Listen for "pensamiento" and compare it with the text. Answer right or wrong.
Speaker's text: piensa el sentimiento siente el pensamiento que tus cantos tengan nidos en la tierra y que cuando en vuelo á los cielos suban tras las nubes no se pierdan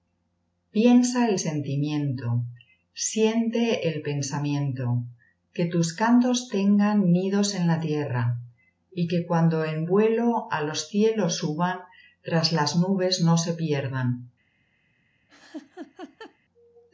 right